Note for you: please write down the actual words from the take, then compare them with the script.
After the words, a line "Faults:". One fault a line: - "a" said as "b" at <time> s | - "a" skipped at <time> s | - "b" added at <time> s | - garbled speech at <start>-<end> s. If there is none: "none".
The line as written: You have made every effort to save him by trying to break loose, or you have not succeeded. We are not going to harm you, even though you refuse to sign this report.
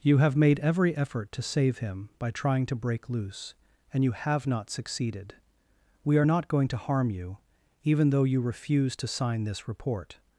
You have made every effort to save him by trying to break loose, and you have not succeeded. We are not going to harm you, even though you refuse to sign this report.
Faults:
- "or" said as "and" at 3.9 s